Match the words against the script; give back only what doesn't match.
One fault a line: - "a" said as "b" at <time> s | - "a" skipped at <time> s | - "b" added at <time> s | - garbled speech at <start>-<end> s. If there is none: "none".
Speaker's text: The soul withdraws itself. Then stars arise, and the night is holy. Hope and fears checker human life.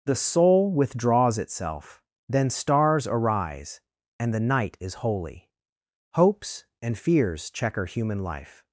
- "Hope" said as "Hopes" at 6.2 s